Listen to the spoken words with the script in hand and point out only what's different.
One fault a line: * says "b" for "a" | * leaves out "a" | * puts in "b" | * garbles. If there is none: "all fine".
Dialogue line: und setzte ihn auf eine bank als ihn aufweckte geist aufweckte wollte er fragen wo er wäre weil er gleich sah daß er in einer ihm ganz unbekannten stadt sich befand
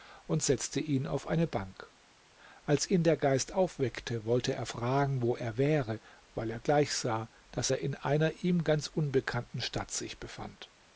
* says "der" for "aufweckte"